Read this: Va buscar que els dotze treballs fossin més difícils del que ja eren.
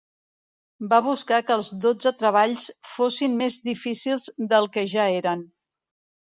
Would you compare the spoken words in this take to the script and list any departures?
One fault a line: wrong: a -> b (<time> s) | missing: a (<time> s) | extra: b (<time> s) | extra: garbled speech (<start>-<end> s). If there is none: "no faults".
no faults